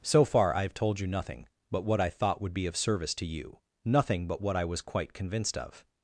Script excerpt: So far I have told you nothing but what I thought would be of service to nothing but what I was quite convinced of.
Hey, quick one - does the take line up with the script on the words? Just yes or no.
no